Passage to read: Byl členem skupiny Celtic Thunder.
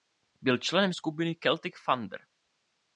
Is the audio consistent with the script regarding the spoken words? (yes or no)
yes